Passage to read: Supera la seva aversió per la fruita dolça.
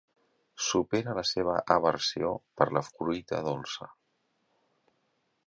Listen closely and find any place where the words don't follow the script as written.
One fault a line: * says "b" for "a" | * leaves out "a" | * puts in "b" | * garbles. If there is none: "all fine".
all fine